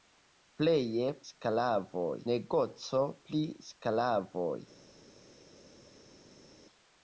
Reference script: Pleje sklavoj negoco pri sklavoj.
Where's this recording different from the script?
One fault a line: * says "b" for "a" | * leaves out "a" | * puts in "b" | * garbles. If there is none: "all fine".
all fine